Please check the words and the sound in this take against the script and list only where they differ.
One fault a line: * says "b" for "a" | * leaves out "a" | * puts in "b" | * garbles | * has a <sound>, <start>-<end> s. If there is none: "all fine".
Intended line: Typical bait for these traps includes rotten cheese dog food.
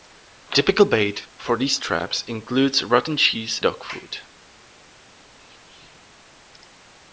all fine